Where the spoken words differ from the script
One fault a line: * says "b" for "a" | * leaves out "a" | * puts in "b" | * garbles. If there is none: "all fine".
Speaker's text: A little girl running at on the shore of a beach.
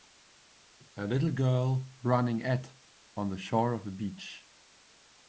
all fine